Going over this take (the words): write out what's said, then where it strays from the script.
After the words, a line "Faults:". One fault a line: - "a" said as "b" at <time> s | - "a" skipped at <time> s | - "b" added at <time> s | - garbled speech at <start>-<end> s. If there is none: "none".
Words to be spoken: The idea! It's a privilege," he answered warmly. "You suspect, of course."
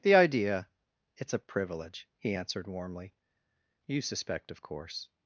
The idea! It's a privilege," he answered warmly. "You suspect, of course."
Faults:
none